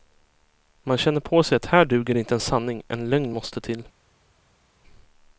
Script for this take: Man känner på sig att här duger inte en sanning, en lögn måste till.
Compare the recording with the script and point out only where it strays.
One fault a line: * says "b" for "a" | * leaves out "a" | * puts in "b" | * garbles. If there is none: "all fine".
all fine